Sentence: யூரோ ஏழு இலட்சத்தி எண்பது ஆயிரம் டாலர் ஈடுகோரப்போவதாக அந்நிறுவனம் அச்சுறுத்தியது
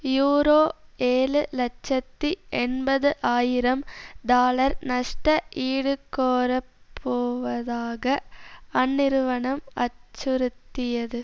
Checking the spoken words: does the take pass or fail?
fail